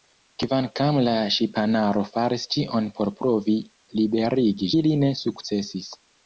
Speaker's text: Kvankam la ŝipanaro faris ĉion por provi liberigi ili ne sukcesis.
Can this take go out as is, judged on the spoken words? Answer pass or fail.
pass